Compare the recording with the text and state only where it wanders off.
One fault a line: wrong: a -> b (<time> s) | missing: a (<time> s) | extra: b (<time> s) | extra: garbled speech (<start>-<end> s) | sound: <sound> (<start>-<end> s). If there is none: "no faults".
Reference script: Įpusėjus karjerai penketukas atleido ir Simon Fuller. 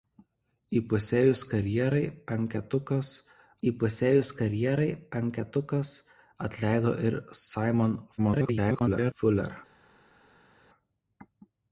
extra: įpusėjus karjerai penketukas (3.7 s)
extra: garbled speech (8.2-9.1 s)